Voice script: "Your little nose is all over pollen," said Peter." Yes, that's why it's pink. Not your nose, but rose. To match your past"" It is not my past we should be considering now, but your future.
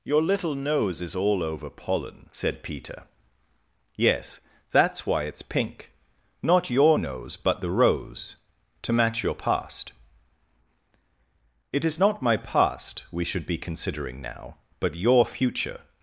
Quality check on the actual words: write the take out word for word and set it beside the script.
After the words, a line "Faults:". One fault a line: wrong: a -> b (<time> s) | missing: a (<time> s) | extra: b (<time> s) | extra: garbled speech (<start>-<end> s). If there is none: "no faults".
"Your little nose is all over pollen," said Peter." Yes, that's why it's pink. Not your nose, but the rose. To match your past"" It is not my past we should be considering now, but your future.
Faults:
extra: the (7.6 s)